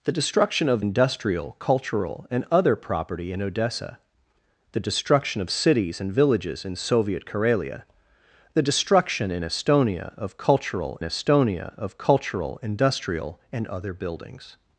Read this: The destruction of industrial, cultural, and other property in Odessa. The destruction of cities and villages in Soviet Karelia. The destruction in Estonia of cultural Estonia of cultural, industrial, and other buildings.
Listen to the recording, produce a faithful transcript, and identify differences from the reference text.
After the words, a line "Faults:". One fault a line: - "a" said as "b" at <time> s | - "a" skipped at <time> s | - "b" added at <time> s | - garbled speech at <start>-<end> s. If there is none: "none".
The destruction of industrial, cultural, and other property in Odessa. The destruction of cities and villages in Soviet Karelia. The destruction in Estonia of cultural Estonia of cultural, industrial, and other buildings.
Faults:
none